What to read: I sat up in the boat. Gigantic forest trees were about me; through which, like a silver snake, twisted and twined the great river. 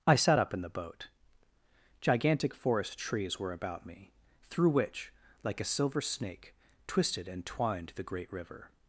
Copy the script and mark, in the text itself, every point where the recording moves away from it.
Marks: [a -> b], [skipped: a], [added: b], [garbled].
I sat up in the boat. Gigantic forest trees were about me; through which, like a silver snake, twisted and twined the great river.